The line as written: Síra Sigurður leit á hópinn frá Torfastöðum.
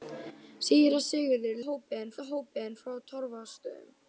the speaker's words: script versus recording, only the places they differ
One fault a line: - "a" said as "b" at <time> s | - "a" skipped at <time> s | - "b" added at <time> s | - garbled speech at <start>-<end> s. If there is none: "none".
- "leit" said as "hópinn" at 1.7 s